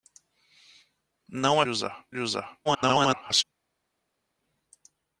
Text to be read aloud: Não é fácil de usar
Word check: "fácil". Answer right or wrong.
wrong